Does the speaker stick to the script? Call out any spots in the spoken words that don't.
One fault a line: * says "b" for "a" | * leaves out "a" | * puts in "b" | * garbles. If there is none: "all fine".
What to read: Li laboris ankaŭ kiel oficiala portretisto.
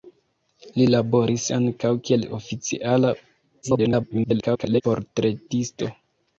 * garbles